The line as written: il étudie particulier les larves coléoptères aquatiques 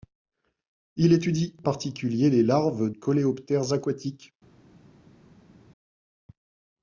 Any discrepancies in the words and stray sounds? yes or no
no